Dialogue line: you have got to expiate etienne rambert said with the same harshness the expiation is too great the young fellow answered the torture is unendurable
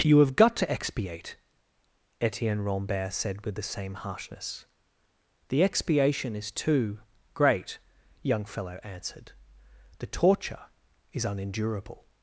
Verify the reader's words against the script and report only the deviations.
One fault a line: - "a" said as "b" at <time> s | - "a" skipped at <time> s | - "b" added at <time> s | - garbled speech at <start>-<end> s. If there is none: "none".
- "the" skipped at 7.8 s